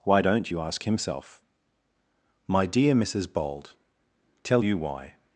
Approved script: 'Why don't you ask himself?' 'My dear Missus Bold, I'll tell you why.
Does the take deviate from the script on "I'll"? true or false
true